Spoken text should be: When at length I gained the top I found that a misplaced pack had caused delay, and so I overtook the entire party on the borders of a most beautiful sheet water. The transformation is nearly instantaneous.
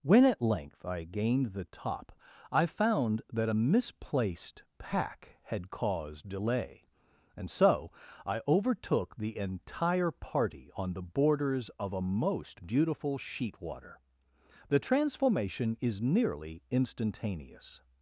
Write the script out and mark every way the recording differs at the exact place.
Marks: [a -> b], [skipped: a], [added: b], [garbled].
When at length I gained the top I found that a misplaced pack had caused delay, and so I overtook the entire party on the borders of a most beautiful sheet water. The transformation is nearly instantaneous.